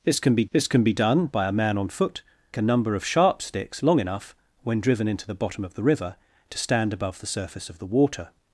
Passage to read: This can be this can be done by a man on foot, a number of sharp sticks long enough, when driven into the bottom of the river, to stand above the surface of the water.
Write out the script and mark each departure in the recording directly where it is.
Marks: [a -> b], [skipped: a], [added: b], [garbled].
This can be this can be done by a man on foot, a number of sharp sticks long enough, when driven into the bottom of the river, to stand above the surface of the water.